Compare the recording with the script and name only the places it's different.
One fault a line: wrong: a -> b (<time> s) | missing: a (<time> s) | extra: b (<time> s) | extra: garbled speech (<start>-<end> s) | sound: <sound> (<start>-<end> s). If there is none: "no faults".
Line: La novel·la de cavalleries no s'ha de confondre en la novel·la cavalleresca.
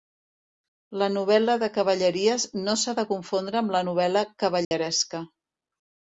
wrong: en -> amb (3.6 s)
sound: dropout (4.6-4.7 s)